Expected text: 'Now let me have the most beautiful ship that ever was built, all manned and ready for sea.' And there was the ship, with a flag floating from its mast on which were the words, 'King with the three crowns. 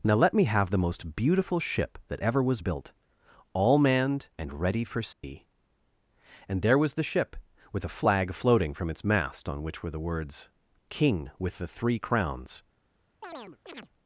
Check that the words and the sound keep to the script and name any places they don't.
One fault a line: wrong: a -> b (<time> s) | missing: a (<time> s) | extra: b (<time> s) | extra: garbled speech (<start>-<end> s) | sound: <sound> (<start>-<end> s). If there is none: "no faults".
sound: dropout (5.1-5.2 s)
sound: chirp (13.2-13.9 s)